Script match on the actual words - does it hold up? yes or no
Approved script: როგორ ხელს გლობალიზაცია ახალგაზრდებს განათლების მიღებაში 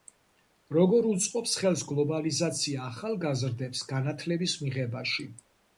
no